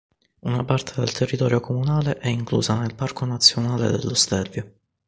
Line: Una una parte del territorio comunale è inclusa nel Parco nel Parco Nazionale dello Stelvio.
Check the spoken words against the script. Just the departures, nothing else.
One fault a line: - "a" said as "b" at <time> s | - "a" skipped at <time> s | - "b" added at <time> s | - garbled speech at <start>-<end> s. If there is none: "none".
- "una" skipped at 0.6 s
- "nel Parco" skipped at 3.3 s